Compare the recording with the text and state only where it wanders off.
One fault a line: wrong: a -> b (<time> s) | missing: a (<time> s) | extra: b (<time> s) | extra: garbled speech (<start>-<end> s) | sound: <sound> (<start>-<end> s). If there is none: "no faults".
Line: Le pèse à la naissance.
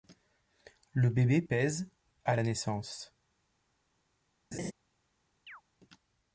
extra: bébé (1.1 s)
sound: laugh (4.5-4.7 s)
sound: chirp (5.5-5.6 s)